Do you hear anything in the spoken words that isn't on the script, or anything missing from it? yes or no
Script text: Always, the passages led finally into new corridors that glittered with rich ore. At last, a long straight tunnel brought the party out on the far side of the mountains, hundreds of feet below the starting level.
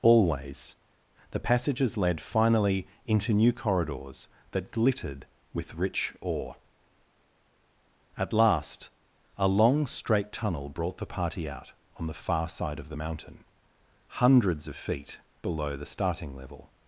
yes